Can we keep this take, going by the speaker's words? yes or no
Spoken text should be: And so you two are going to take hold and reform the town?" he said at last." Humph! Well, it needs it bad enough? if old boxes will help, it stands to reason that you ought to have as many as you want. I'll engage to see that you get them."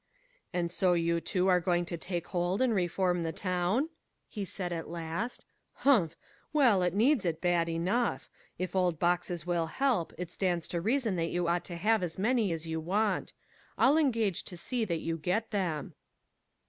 yes